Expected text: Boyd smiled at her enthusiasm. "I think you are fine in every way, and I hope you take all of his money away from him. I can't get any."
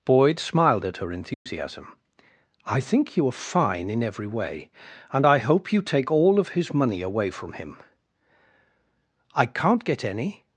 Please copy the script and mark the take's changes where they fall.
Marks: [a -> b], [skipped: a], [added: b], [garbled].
Boyd smiled at her enthusiasm. "I think you are fine in every way, and I hope you take all of his money away from him. I can't get any."